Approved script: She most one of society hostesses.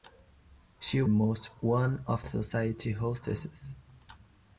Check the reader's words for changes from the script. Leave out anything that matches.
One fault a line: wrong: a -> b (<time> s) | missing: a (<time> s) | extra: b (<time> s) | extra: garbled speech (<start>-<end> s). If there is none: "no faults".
no faults